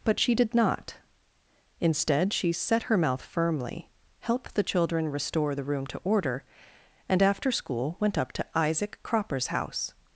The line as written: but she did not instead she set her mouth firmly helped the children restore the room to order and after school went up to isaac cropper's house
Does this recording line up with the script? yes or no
yes